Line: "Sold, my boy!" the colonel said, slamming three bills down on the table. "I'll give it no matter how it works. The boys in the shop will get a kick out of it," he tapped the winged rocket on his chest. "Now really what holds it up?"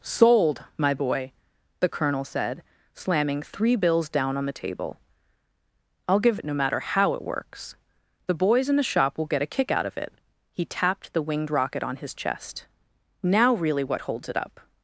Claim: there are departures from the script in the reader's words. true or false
false